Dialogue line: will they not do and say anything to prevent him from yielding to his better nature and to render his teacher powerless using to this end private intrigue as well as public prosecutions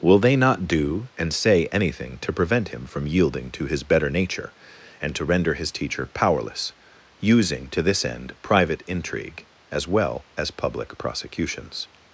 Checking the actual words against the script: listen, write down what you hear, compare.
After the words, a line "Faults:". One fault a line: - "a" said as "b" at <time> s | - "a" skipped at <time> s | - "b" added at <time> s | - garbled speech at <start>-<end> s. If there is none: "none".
will they not do and say anything to prevent him from yielding to his better nature and to render his teacher powerless using to this end private intrigue as well as public prosecutions
Faults:
none